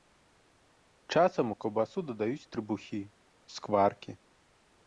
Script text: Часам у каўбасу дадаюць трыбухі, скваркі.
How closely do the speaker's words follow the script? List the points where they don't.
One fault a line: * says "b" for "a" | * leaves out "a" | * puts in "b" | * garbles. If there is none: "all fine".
all fine